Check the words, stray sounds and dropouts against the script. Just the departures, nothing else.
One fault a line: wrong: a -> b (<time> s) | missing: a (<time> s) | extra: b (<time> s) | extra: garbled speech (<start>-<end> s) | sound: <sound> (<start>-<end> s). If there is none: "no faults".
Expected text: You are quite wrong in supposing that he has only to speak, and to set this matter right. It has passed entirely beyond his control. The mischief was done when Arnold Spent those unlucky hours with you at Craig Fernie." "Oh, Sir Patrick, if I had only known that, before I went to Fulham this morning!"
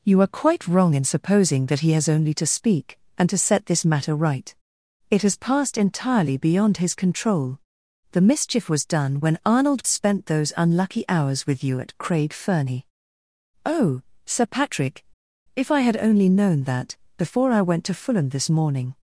no faults